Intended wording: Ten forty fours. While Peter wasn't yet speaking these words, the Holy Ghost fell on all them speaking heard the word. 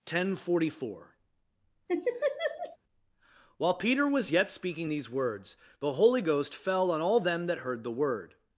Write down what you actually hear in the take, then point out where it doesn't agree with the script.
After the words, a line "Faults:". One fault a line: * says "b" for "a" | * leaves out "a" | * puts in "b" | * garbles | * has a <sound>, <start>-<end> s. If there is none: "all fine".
Ten forty four. While Peter was yet speaking these words, the Holy Ghost fell on all them that heard the word.
Faults:
* says "four" for "fours"
* has a laugh, 1.9-2.8 s
* says "was" for "wasn't"
* says "that" for "speaking"